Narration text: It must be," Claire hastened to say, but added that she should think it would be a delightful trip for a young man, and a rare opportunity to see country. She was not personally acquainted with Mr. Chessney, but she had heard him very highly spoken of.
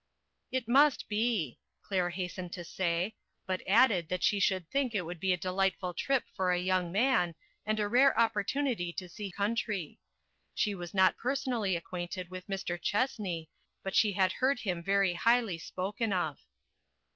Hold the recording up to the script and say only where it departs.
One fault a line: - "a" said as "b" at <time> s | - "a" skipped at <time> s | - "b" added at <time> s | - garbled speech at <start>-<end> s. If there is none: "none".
none